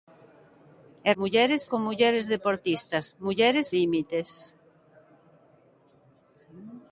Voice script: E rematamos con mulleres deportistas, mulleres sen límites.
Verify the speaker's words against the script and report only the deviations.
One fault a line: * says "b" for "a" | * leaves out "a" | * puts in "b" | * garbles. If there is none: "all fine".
* says "mulleres" for "rematamos"
* leaves out "sen"